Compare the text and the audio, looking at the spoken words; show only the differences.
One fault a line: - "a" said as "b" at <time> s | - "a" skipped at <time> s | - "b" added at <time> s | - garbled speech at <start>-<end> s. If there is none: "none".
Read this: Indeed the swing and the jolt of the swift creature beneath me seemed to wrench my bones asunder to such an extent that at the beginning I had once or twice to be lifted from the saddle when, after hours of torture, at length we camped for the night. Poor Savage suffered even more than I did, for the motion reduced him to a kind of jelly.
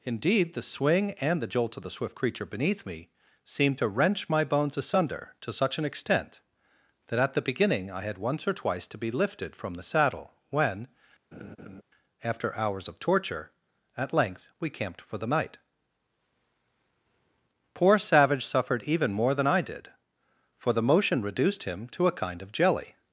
none